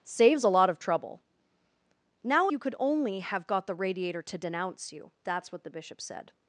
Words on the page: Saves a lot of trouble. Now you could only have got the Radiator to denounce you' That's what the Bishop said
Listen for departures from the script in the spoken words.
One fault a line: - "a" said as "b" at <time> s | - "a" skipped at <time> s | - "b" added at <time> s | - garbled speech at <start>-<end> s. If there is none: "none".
none